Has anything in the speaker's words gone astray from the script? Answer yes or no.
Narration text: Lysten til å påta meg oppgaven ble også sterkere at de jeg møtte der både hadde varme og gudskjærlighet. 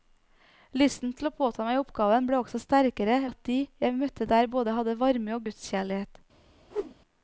no